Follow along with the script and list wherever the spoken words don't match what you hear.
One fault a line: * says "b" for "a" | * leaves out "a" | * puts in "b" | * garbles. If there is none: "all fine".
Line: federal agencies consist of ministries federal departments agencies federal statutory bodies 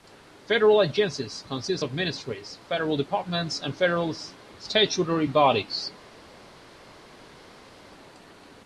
* says "and" for "agencies"